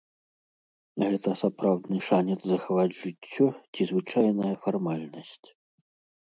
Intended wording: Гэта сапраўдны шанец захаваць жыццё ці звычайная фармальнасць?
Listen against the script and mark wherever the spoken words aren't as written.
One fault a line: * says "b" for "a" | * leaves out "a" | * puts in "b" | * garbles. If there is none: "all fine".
all fine